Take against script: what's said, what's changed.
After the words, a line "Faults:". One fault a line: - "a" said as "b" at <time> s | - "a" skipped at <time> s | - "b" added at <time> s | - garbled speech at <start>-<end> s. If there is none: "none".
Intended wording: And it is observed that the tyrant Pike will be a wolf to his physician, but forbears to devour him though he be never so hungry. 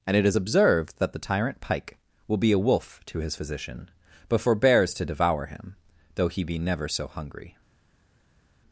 And it is observed that the tyrant Pike will be a wolf to his physician, but forbears to devour him though he be never so hungry.
Faults:
none